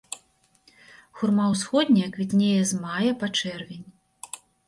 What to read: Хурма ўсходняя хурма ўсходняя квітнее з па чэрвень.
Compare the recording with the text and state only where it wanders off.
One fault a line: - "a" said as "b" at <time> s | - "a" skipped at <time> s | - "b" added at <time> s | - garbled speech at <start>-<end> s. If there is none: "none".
- "хурма ўсходняя" skipped at 2.1 s
- "мая" added at 2.9 s